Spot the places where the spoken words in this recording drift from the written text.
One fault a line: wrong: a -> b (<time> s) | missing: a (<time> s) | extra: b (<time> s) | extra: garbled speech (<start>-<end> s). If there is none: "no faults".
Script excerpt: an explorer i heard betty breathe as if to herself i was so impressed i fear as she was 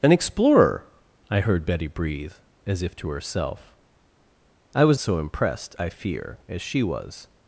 no faults